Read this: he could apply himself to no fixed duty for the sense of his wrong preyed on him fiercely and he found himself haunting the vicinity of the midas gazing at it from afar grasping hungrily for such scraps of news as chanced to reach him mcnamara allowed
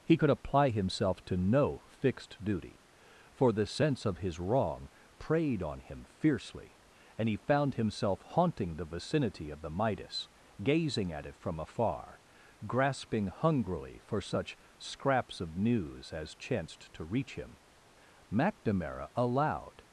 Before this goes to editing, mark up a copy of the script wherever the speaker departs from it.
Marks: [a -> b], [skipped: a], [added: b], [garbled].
he could apply himself to no fixed duty for the sense of his wrong preyed on him fiercely and he found himself haunting the vicinity of the midas gazing at it from afar grasping hungrily for such scraps of news as chanced to reach him mcnamara allowed